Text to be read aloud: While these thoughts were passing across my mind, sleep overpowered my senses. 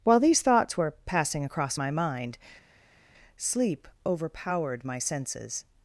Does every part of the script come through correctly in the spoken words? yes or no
yes